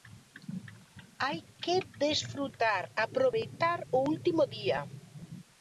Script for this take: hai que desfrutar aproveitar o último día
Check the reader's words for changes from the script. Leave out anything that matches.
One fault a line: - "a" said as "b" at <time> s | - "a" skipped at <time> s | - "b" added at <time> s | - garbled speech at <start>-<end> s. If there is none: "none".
none